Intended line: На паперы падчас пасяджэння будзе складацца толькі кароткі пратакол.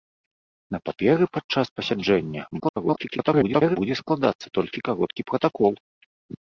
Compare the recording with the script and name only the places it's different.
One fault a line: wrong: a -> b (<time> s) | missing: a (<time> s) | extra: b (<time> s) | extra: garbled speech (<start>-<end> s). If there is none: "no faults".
extra: garbled speech (2.6-3.8 s)